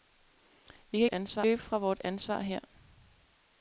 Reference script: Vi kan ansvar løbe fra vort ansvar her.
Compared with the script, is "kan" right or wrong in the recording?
right